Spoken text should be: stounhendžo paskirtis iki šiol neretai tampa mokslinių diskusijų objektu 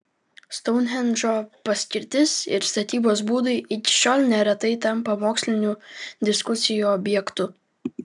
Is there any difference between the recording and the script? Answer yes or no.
yes